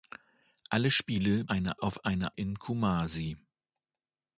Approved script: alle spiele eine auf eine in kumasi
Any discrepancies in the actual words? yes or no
no